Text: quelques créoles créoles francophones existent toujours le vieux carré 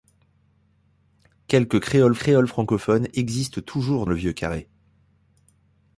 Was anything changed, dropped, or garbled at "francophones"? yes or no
no